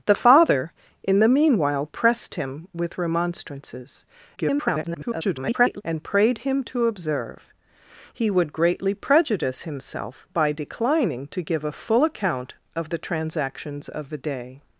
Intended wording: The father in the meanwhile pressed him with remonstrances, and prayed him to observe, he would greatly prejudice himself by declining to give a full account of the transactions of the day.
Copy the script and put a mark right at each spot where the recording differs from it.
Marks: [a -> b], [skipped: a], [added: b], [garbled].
The father in the meanwhile pressed him with remonstrances, [garbled] and prayed him to observe, he would greatly prejudice himself by declining to give a full account of the transactions of the day.